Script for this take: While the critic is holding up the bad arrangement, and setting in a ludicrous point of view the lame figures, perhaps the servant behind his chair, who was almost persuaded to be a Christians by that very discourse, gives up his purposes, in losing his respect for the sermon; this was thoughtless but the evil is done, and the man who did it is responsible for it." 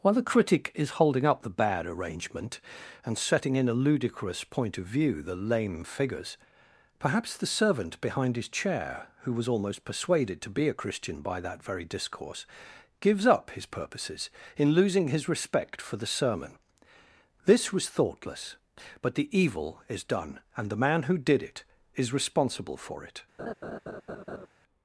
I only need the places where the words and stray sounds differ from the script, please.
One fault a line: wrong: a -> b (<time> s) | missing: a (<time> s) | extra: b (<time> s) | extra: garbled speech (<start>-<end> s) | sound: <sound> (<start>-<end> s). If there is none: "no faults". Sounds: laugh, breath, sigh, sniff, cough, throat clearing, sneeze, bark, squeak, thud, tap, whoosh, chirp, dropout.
wrong: Christians -> Christian (10.7 s)
sound: laugh (23.4-24.5 s)